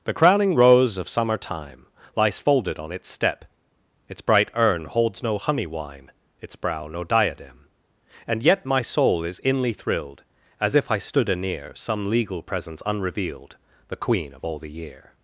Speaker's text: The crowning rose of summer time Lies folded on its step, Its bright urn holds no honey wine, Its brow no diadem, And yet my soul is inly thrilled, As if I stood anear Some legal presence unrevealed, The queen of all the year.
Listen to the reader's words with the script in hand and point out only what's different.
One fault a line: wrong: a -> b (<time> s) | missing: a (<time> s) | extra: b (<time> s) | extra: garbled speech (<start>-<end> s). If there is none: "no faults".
no faults